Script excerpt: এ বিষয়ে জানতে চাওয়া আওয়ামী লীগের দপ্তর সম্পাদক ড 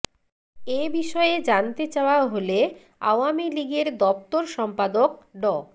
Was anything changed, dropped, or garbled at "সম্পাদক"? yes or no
no